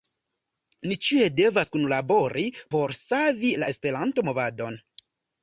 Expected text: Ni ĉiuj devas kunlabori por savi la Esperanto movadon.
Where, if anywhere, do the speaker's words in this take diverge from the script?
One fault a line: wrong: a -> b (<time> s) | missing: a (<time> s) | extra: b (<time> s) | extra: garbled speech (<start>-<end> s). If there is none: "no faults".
no faults